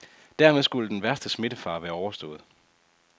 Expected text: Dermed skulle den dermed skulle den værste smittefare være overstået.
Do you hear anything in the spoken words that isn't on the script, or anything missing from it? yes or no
yes